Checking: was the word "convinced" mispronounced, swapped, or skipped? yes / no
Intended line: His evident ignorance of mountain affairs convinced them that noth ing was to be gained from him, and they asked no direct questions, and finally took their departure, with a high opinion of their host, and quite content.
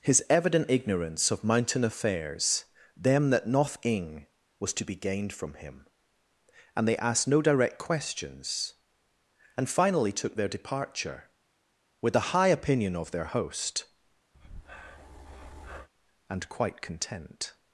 yes